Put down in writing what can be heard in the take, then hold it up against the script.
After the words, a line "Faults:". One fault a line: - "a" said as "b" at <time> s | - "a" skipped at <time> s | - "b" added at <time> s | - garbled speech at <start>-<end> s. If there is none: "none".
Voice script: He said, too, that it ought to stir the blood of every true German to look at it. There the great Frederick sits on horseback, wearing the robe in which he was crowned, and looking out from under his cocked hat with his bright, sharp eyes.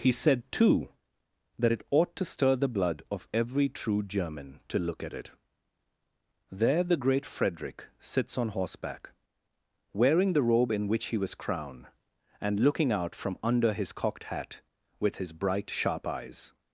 He said, too, that it ought to stir the blood of every true German to look at it. There the great Frederick sits on horseback, wearing the robe in which he was crowned, and looking out from under his cocked hat with his bright, sharp eyes.
Faults:
none